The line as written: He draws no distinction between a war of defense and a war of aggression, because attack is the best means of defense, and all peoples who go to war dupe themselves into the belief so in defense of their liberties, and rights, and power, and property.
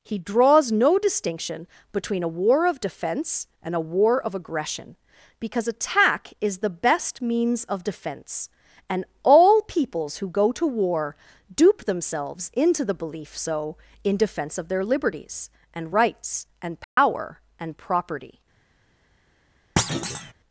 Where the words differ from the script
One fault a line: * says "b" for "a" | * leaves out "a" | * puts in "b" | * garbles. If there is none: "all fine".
all fine